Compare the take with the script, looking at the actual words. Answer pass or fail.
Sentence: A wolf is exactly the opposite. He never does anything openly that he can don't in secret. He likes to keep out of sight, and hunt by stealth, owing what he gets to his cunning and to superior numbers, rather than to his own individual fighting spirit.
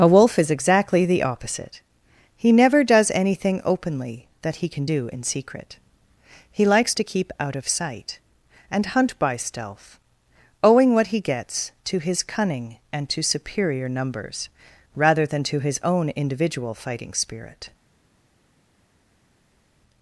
fail